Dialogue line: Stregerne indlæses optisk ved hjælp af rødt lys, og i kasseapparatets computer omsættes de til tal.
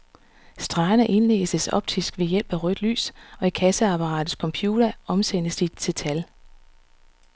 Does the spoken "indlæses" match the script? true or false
true